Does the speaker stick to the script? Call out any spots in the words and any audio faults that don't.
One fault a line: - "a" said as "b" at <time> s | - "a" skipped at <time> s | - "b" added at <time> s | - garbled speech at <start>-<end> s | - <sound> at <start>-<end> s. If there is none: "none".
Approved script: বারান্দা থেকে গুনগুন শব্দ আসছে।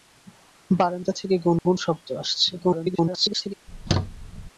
- dropout at 1.6-1.7 s
- garbled speech at 2.6-3.5 s
- squeak at 3.7-4.5 s